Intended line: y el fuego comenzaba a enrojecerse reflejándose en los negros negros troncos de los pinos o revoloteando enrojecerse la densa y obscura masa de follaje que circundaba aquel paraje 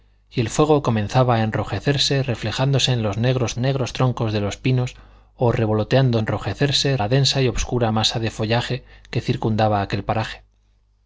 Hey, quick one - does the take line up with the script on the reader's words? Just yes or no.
yes